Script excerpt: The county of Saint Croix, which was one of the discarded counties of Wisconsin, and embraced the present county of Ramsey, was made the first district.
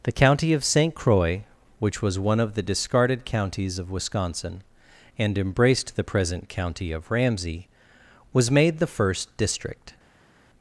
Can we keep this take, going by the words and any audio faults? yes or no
yes